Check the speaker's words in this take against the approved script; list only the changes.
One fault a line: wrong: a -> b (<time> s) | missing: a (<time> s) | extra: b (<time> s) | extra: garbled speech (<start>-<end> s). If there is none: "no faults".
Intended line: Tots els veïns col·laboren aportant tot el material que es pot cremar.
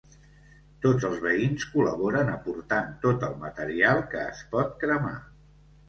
no faults